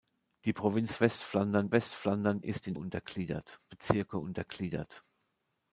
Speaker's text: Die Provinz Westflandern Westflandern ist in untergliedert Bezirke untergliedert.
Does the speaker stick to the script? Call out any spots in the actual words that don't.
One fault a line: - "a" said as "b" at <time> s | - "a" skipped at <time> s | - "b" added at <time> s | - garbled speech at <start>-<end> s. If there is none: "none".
none